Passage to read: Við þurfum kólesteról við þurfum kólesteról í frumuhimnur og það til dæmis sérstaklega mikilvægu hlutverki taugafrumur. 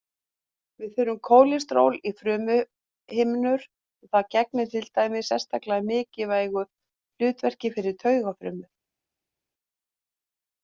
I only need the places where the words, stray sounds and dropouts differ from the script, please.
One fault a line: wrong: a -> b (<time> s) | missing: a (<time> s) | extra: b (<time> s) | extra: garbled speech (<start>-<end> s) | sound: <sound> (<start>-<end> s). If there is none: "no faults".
missing: við þurfum kólesteról (2.0 s)
extra: gegnir (4.4 s)
extra: fyrir (7.8 s)